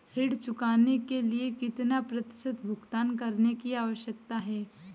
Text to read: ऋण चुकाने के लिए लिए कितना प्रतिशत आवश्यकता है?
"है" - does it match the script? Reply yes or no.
yes